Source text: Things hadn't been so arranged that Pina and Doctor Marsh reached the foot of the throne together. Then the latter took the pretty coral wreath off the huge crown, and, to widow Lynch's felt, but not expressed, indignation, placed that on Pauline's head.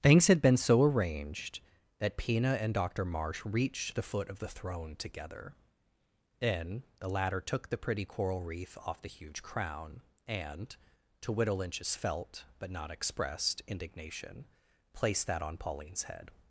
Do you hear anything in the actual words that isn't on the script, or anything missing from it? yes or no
yes